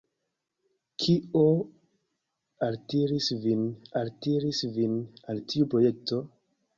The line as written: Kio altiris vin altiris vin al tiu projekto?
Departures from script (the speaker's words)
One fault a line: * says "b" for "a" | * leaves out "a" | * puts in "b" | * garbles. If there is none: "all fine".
all fine